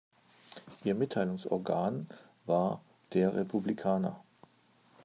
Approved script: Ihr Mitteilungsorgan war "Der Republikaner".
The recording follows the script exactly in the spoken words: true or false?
true